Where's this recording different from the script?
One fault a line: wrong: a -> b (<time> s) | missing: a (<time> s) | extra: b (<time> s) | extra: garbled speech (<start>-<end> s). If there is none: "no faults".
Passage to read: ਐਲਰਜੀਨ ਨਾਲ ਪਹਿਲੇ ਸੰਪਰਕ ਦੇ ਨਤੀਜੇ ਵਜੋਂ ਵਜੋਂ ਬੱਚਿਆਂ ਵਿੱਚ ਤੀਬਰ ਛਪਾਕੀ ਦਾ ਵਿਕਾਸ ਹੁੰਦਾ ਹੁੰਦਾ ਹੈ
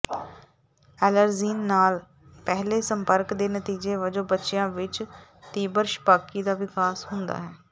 missing: ਵਜੋਂ (4.2 s)
missing: ਹੁੰਦਾ (7.4 s)